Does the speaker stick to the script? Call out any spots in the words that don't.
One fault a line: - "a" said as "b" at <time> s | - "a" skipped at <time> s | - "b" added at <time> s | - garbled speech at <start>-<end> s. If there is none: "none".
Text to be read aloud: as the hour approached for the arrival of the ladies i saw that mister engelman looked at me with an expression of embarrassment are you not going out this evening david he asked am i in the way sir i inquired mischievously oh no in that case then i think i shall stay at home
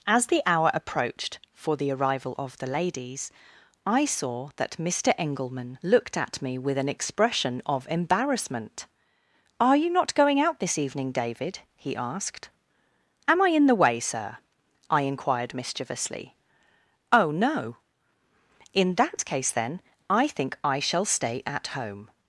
none